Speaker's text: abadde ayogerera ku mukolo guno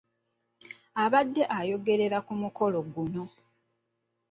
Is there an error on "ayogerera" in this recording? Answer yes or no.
no